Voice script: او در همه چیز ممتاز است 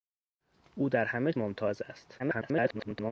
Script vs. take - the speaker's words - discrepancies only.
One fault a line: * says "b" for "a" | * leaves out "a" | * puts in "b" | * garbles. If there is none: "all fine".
* leaves out "چیز"
* garbles